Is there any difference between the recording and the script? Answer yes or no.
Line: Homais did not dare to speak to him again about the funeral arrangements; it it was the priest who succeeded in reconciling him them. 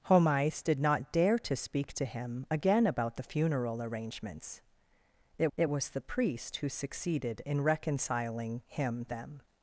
no